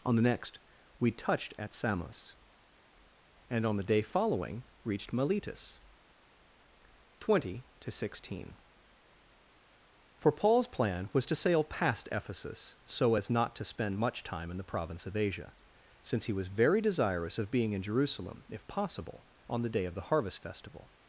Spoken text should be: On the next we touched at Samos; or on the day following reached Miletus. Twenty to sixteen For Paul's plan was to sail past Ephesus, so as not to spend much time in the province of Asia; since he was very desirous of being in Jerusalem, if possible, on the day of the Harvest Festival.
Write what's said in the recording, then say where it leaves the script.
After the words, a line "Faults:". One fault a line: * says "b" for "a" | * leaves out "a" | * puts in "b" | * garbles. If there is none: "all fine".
On the next we touched at Samos; and on the day following reached Miletus. Twenty to sixteen For Paul's plan was to sail past Ephesus, so as not to spend much time in the province of Asia; since he was very desirous of being in Jerusalem, if possible, on the day of the Harvest Festival.
Faults:
* says "and" for "or"